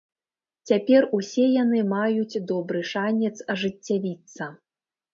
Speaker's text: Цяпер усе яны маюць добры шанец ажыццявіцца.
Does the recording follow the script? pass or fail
pass